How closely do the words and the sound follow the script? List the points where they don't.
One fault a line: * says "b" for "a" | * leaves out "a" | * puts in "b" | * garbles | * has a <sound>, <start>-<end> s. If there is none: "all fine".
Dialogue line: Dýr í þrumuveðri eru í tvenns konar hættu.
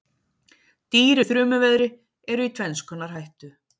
all fine